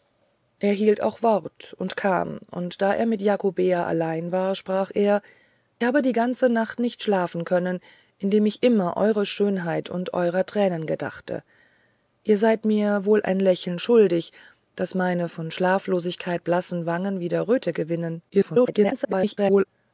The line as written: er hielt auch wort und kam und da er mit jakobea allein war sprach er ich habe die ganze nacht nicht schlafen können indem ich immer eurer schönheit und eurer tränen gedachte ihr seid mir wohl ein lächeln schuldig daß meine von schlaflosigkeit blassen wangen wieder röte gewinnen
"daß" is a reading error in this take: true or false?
false